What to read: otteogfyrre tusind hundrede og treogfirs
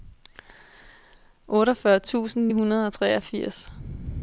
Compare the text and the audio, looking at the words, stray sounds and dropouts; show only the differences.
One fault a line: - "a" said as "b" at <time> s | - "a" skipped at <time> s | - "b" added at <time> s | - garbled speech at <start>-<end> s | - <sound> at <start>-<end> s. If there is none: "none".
none